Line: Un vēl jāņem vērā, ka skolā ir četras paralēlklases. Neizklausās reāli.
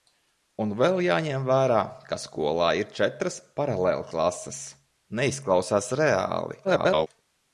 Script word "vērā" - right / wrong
right